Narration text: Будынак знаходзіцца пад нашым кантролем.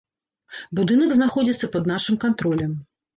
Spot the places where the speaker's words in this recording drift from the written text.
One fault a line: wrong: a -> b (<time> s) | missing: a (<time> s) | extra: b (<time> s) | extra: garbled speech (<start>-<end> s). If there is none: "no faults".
no faults